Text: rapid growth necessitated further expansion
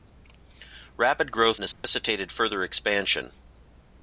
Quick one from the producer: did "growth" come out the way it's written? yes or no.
yes